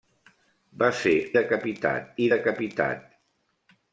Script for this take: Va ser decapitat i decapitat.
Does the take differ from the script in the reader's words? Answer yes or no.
no